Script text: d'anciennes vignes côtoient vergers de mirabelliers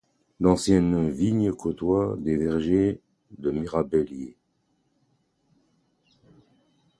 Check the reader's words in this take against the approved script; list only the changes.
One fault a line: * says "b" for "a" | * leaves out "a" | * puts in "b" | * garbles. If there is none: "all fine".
* puts in "des"